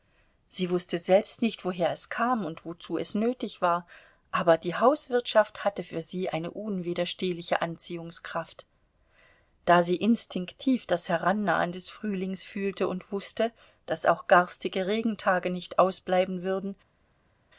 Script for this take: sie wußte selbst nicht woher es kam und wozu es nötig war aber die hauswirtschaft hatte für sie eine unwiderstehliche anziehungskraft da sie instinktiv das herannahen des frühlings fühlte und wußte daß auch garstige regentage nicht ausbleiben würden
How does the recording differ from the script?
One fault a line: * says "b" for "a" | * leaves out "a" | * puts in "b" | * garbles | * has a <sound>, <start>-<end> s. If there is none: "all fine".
all fine